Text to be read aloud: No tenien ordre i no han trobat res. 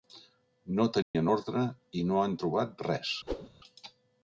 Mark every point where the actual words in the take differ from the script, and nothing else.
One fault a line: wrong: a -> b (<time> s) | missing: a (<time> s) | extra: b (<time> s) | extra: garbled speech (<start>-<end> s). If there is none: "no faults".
no faults